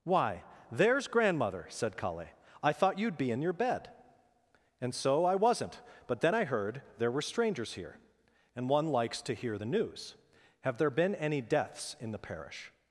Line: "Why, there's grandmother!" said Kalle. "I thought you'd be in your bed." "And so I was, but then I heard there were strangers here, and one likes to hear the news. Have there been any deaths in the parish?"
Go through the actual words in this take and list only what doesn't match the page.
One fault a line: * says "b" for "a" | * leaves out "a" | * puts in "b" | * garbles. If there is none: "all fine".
* says "wasn't" for "was"